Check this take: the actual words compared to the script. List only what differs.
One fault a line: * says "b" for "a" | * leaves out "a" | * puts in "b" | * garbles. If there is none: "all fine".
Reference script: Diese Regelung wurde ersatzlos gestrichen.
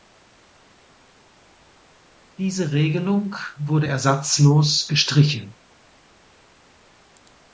all fine